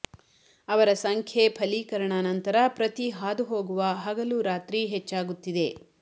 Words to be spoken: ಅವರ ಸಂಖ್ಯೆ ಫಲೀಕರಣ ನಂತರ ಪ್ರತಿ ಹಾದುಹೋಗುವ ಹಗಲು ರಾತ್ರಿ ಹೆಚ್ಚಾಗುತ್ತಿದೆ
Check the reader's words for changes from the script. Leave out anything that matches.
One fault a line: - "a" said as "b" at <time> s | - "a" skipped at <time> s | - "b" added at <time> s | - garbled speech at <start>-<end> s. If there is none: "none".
none